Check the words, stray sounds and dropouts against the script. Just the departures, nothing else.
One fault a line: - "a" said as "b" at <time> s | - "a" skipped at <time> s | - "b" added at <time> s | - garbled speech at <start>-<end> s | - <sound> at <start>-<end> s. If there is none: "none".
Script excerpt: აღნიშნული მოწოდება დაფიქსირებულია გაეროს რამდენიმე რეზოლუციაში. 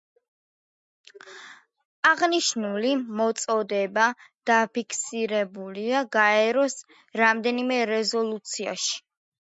none